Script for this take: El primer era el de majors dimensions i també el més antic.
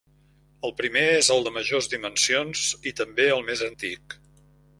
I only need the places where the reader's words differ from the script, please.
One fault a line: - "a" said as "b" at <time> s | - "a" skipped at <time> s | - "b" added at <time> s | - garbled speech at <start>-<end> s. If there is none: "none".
- "era" said as "és" at 1.2 s